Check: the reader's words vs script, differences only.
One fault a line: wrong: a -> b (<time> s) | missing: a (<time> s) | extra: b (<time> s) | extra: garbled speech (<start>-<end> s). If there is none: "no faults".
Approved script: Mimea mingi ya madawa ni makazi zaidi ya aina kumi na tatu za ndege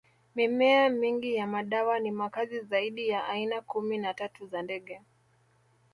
no faults